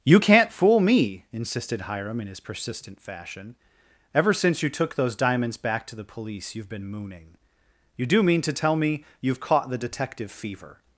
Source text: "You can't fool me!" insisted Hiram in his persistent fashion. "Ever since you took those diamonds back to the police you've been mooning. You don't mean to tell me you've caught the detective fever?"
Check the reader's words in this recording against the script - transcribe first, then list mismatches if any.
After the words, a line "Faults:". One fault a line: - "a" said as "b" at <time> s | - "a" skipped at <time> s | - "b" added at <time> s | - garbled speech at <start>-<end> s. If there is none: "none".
"You can't fool me!" insisted Hiram in his persistent fashion. "Ever since you took those diamonds back to the police you've been mooning. You do mean to tell me you've caught the detective fever?"
Faults:
- "don't" said as "do" at 8.1 s